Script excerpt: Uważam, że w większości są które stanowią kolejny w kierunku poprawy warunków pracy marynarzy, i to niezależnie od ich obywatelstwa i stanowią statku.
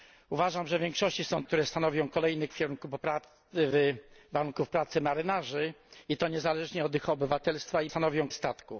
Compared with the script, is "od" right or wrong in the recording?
right